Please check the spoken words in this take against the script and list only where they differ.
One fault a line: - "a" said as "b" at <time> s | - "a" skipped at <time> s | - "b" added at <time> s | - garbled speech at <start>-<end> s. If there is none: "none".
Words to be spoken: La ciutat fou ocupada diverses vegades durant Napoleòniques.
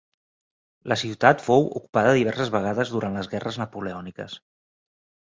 - "les Guerres" added at 3.2 s